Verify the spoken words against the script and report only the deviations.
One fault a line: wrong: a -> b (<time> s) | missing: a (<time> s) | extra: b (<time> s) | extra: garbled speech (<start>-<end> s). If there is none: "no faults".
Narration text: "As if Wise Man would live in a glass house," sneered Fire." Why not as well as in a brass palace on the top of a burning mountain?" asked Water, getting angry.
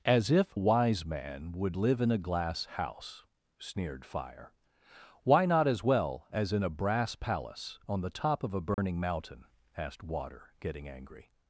no faults